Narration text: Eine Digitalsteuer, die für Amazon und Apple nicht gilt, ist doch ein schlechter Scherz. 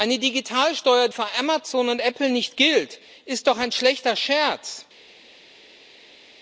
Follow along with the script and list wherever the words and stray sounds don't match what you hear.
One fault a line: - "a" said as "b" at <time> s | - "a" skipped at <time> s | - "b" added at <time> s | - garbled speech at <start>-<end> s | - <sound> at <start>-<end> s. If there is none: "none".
- "die" skipped at 1.1 s